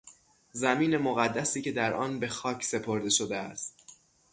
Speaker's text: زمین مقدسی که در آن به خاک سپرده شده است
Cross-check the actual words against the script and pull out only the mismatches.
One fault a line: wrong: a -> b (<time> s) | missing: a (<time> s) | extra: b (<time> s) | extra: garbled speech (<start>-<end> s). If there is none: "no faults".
no faults